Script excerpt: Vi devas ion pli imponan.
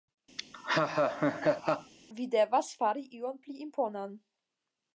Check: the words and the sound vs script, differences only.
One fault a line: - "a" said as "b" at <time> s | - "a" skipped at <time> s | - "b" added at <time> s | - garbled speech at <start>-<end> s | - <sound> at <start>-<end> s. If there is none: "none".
- laugh at 0.4-1.9 s
- "fari" added at 2.8 s